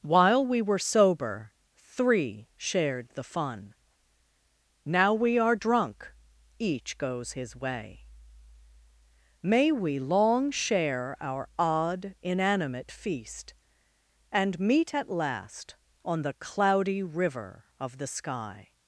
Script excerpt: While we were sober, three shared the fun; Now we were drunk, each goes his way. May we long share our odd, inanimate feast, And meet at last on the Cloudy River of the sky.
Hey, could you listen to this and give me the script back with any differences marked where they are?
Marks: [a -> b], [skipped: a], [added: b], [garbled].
While we were sober, three shared the fun; Now we [were -> are] drunk, each goes his way. May we long share our odd, inanimate feast, And meet at last on the Cloudy River of the sky.